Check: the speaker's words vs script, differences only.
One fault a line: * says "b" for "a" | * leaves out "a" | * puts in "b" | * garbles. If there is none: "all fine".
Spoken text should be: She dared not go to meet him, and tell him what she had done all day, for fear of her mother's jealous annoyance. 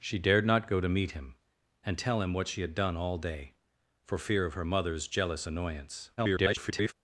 * garbles